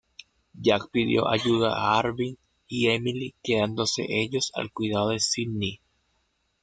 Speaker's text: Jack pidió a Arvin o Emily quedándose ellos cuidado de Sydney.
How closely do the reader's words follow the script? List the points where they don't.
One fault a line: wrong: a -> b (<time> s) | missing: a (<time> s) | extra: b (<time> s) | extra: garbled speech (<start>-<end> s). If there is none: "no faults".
extra: ayuda (1.3 s)
wrong: o -> y (2.7 s)
extra: al (4.5 s)